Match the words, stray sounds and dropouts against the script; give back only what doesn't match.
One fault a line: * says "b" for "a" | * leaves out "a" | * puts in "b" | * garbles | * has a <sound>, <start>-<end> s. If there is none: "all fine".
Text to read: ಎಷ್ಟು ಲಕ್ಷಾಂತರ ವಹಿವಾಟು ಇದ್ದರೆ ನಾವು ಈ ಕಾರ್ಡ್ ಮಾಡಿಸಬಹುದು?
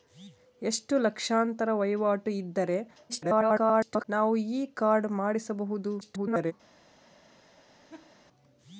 * garbles
* garbles
* has a laugh, 7.9-8.2 s